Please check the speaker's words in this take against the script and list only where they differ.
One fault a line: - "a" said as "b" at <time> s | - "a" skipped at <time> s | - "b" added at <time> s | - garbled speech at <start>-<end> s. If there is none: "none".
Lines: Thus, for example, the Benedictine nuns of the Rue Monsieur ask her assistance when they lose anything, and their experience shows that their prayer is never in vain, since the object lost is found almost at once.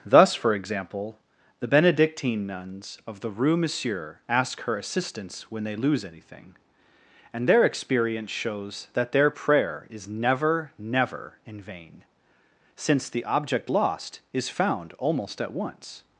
- "never" added at 10.8 s